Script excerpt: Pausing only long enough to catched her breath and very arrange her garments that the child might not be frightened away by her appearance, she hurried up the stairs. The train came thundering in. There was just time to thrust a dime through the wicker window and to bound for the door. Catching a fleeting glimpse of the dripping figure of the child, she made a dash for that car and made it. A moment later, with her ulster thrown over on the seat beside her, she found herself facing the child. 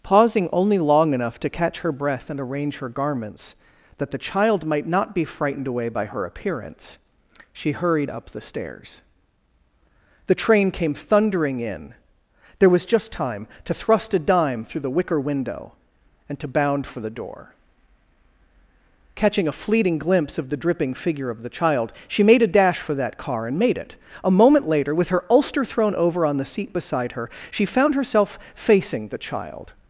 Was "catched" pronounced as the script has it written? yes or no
no